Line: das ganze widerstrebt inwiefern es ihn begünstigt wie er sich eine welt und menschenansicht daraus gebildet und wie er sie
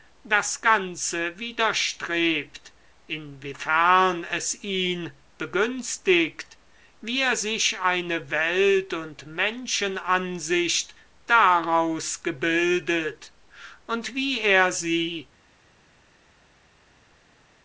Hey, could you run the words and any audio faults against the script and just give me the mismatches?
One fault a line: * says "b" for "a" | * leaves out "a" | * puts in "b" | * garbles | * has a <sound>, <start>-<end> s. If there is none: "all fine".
all fine